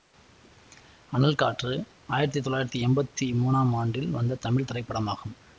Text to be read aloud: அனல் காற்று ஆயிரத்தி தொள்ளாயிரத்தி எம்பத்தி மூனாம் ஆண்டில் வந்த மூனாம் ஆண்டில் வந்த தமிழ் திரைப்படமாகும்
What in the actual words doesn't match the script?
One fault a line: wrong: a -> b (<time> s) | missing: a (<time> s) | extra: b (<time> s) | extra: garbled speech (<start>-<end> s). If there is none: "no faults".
missing: மூனாம் ஆண்டில் வந்த (4.4 s)